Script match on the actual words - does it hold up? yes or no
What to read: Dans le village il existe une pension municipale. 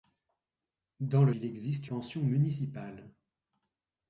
no